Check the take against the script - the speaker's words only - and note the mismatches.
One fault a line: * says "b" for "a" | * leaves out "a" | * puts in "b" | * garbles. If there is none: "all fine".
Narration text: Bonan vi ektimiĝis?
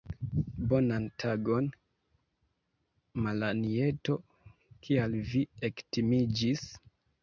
* puts in "tagon Malanjeto kial"